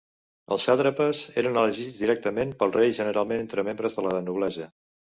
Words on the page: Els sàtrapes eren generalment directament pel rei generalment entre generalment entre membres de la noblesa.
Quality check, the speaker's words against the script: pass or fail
fail